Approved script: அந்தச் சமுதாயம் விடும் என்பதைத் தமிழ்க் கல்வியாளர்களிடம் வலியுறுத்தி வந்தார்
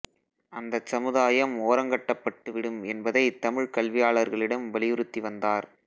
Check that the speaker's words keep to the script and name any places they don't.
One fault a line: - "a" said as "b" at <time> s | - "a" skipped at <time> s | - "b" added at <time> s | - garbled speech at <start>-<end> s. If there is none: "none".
- "ஓரங்கட்டப்பட்டு" added at 1.6 s